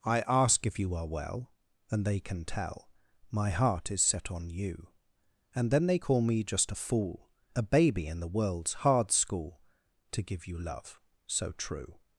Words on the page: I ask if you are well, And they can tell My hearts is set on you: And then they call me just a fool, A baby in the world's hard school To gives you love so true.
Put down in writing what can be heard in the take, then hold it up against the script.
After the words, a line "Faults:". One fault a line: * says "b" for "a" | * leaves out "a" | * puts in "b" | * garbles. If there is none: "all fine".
I ask if you are well, And they can tell My heart is set on you: And then they call me just a fool, A baby in the world's hard school To give you love so true.
Faults:
* says "heart" for "hearts"
* says "give" for "gives"